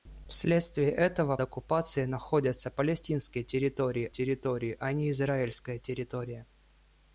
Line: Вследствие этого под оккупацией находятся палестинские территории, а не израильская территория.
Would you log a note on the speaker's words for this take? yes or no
yes